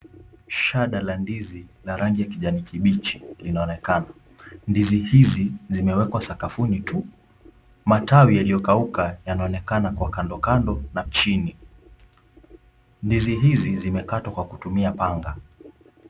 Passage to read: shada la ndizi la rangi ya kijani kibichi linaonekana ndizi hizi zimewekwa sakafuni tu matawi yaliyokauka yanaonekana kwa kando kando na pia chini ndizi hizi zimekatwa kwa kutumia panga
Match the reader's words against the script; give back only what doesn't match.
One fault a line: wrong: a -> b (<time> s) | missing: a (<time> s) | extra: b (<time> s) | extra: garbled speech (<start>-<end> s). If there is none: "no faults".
missing: pia (11.0 s)